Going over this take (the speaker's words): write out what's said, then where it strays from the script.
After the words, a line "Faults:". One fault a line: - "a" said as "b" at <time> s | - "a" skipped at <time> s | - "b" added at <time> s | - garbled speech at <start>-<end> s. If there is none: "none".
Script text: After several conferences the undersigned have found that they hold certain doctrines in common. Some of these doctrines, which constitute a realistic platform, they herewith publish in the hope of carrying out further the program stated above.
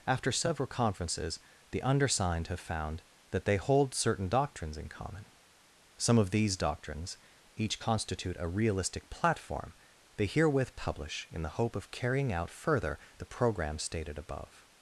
After several conferences the undersigned have found that they hold certain doctrines in common. Some of these doctrines, each constitute a realistic platform, they herewith publish in the hope of carrying out further the program stated above.
Faults:
- "which" said as "each" at 7.5 s